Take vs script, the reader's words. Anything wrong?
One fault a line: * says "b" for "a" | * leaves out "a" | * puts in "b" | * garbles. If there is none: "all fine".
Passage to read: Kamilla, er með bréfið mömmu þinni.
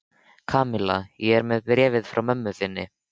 * puts in "ég"
* puts in "frá"